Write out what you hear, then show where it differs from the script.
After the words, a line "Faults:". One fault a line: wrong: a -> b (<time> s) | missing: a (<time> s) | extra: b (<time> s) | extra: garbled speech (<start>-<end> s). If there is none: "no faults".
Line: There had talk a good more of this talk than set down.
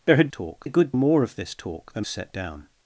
There had talk a good more of this talk than set down.
Faults:
no faults